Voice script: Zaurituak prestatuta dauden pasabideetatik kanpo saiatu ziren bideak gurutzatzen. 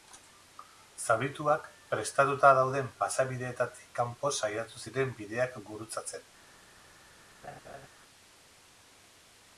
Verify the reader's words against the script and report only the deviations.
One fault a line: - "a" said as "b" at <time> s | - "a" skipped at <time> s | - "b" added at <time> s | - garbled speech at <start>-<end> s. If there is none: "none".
none